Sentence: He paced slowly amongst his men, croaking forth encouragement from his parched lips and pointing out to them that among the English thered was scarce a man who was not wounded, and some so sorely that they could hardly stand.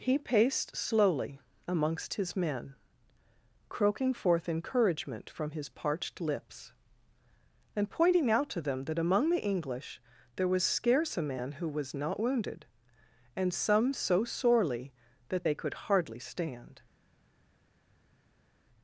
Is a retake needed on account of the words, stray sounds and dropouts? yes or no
yes